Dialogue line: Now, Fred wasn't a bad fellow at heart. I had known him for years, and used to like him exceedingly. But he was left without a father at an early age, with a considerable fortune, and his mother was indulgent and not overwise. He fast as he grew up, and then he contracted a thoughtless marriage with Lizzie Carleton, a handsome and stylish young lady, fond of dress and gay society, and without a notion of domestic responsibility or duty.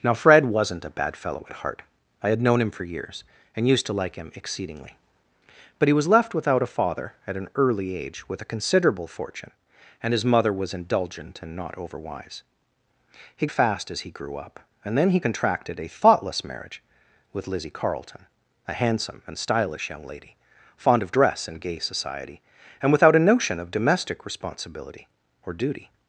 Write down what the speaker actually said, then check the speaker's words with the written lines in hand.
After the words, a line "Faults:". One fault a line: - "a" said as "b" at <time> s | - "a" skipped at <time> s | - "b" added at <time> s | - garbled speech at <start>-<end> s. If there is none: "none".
Now, Fred wasn't a bad fellow at heart. I had known him for years, and used to like him exceedingly. But he was left without a father at an early age, with a considerable fortune, and his mother was indulgent and not overwise. He fast as he grew up, and then he contracted a thoughtless marriage with Lizzie Carleton, a handsome and stylish young lady, fond of dress and gay society, and without a notion of domestic responsibility or duty.
Faults:
none